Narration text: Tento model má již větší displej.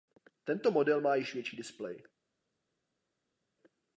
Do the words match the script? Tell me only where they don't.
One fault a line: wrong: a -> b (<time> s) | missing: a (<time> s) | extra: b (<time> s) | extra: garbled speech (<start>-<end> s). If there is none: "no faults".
no faults